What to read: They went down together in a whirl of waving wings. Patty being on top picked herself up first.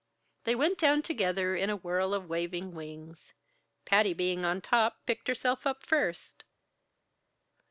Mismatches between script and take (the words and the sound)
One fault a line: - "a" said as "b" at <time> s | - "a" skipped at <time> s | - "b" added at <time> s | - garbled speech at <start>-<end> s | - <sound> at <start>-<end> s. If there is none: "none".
none